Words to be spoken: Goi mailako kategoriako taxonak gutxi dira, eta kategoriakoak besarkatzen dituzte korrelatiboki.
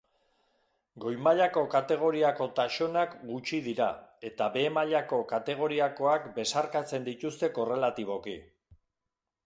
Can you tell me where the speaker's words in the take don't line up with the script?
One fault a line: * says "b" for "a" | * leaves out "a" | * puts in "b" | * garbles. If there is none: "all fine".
* puts in "behe mailako"